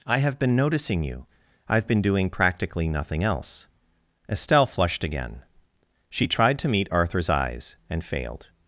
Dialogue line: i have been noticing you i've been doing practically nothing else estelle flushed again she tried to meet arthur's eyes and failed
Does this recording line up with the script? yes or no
yes